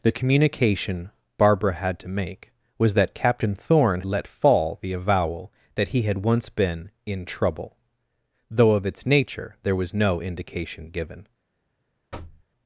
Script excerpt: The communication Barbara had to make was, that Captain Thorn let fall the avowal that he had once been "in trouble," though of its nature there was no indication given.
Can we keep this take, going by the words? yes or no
yes